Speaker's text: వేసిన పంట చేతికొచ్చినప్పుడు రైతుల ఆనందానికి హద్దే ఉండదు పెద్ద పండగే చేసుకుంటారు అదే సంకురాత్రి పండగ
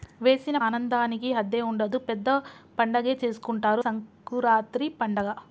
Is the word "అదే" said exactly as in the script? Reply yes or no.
no